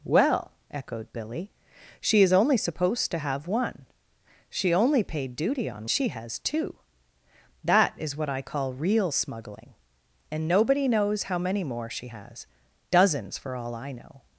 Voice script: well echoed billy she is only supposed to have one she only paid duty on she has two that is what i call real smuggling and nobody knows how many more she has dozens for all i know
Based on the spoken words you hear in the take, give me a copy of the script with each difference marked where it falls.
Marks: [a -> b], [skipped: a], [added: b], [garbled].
well echoed billy she is only supposed to have one she only paid duty on she has two that is what i call real smuggling and nobody knows how many more she has dozens for all i know